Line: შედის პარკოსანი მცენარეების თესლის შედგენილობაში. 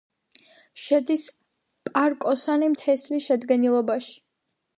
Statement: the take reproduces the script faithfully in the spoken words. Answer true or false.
false